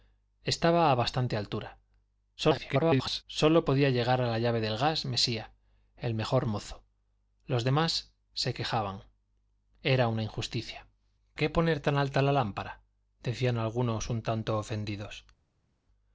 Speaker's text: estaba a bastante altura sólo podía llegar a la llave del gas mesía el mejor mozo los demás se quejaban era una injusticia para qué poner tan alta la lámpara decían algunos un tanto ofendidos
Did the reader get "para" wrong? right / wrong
wrong